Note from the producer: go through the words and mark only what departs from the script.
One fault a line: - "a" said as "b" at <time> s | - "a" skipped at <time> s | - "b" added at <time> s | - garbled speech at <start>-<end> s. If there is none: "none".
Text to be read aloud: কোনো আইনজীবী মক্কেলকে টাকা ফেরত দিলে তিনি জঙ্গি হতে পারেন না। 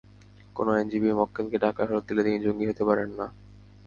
none